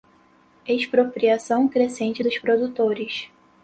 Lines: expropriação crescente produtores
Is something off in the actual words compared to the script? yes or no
yes